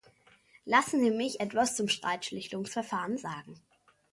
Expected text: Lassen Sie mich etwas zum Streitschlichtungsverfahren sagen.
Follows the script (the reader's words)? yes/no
yes